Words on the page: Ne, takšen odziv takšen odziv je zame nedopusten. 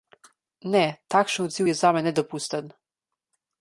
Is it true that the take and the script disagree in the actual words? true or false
true